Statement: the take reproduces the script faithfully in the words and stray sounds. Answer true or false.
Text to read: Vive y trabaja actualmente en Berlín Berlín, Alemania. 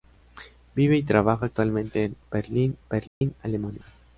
false